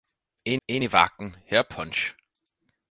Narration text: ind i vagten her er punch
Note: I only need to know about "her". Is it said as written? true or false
true